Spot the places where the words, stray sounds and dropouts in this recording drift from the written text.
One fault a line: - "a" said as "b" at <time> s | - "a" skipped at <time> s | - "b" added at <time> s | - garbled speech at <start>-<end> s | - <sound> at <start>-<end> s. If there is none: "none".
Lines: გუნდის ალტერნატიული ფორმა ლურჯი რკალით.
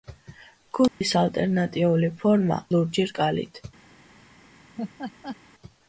- dropout at 0.9-1.0 s
- laugh at 4.8-5.4 s